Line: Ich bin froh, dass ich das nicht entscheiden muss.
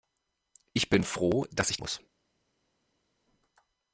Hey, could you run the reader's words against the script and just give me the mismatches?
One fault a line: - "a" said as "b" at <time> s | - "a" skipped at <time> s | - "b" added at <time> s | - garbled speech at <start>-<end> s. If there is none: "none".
- "das nicht entscheiden" skipped at 1.8 s